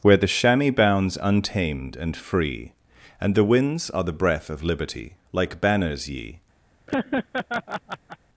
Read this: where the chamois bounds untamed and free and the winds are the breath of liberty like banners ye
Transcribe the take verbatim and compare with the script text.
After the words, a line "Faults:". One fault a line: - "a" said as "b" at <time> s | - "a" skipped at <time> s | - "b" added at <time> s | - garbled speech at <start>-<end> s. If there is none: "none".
where the chamois bounds untamed and free and the winds are the breath of liberty like banners ye
Faults:
none